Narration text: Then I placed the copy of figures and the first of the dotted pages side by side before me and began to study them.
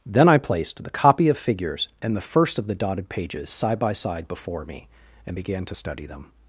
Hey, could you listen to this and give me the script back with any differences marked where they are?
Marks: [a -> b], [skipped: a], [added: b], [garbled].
Then I placed the copy of figures and the first of the dotted pages side by side before me and began to study them.